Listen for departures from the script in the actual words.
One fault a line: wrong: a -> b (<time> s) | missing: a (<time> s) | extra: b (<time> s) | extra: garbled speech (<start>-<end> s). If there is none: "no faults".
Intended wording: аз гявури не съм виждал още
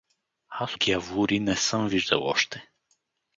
no faults